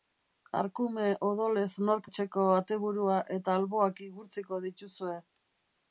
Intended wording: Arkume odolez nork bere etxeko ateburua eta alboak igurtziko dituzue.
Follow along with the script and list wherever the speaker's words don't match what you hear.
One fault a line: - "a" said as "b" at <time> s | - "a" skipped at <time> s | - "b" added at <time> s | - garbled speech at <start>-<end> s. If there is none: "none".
- "bere" skipped at 2.1 s